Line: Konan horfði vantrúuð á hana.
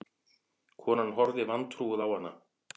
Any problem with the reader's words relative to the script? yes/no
no